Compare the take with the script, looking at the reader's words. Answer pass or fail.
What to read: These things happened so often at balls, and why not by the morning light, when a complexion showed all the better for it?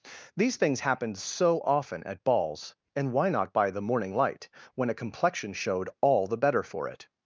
pass